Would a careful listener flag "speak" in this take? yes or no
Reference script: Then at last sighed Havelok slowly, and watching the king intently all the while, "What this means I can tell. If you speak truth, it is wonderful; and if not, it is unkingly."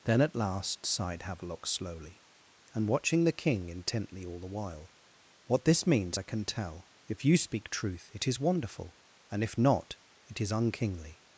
no